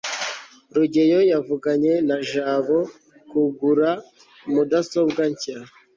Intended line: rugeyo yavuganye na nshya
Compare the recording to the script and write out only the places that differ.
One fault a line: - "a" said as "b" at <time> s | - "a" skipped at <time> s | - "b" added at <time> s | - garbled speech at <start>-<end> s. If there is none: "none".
- "jabo kugura mudasobwa" added at 2.3 s